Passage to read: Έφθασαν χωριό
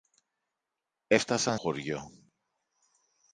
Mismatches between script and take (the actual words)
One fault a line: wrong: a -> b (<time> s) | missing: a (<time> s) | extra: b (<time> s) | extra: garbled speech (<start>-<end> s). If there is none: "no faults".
no faults